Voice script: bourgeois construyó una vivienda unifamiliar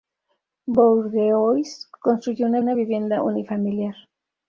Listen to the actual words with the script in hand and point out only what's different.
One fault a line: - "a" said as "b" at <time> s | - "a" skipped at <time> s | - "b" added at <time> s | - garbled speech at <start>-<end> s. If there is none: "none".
- "una" added at 2.6 s